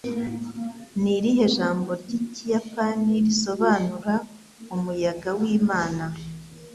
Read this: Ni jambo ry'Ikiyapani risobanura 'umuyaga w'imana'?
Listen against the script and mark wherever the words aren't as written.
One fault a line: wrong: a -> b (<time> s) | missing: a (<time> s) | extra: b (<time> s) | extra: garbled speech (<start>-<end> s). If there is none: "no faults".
extra: irihe (1.2 s)